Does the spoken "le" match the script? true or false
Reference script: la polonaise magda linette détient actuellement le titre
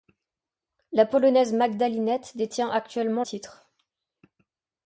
false